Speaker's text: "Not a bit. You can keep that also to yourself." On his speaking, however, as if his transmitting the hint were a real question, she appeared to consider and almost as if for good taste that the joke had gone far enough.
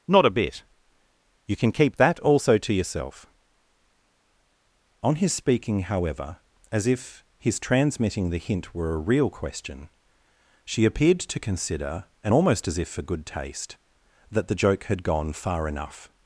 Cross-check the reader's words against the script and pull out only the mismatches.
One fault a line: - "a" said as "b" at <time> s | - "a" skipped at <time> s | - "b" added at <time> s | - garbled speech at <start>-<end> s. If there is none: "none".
none